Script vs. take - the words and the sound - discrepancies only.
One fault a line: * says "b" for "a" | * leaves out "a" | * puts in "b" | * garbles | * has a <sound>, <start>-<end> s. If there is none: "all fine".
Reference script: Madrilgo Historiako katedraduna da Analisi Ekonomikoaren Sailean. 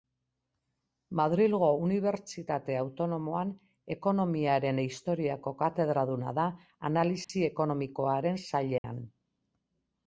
* puts in "Unibertsitate Autonomoan Ekonomiaren"
* has a dropout, 7.2-7.3 s
* has a dropout, 8.8-8.8 s